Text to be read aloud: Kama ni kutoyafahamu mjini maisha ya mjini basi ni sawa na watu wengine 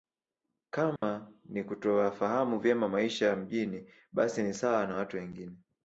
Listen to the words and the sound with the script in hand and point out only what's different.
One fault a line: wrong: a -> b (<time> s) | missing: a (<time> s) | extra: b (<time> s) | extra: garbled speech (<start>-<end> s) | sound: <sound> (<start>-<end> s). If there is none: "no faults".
sound: dropout (1.0-1.0 s)
wrong: mjini -> vyema (2.6 s)